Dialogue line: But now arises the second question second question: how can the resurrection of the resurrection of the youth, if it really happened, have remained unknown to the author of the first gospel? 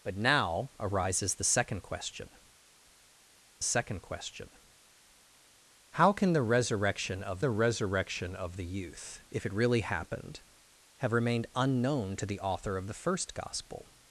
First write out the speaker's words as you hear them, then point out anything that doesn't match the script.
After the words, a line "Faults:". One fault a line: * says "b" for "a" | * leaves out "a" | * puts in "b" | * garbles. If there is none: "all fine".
But now arises the second question second question: how can the resurrection of the resurrection of the youth, if it really happened, have remained unknown to the author of the first gospel?
Faults:
all fine